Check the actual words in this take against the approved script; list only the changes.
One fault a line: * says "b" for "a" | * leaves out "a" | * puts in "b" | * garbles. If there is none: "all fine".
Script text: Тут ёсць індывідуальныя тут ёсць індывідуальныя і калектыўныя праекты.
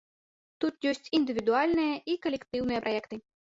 * leaves out "тут ёсць індывідуальныя"